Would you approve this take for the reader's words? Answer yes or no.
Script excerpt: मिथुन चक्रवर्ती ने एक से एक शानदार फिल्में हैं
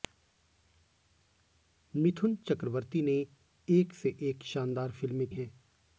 yes